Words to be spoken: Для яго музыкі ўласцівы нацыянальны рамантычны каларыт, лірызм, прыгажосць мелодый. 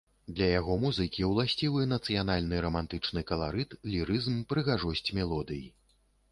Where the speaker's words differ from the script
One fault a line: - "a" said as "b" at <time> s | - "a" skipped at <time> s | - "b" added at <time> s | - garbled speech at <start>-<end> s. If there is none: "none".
none